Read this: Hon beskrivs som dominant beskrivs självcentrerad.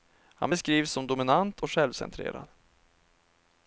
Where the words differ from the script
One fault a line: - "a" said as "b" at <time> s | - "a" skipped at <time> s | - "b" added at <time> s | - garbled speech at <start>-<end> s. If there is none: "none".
- "Hon" said as "Han" at 0.3 s
- "beskrivs" said as "och" at 1.6 s